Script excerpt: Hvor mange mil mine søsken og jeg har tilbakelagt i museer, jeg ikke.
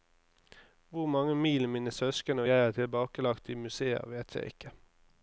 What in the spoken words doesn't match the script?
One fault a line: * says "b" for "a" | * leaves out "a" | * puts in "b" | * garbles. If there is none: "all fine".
* puts in "vet"